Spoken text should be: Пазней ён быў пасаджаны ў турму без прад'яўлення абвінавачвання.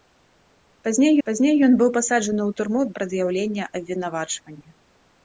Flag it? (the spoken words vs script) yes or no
yes